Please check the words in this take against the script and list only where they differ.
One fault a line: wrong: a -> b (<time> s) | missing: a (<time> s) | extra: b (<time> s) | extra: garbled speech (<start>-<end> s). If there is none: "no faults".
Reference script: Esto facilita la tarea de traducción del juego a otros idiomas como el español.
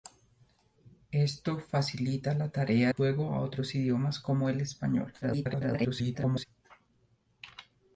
missing: de traducción del (2.9 s)
extra: garbled speech (5.2-6.5 s)